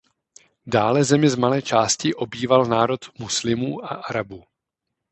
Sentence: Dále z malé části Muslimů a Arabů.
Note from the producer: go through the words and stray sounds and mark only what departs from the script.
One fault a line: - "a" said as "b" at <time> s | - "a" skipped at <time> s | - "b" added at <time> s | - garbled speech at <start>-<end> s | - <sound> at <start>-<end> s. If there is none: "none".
- "zemi" added at 1.0 s
- "obýval národ" added at 2.1 s